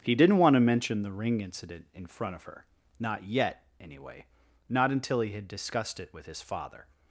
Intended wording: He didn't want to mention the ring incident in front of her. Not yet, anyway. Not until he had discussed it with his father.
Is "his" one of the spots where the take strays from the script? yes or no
no